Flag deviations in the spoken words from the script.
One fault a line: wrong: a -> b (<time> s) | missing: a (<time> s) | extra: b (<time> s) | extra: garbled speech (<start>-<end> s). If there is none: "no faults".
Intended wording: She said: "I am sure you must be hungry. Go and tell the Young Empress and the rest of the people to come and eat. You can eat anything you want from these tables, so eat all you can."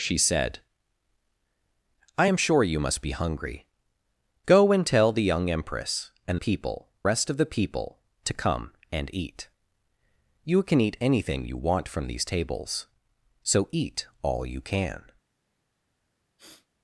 wrong: the -> people (6.3 s)